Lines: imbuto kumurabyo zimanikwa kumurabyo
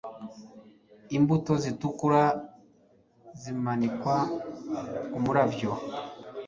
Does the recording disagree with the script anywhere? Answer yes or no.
yes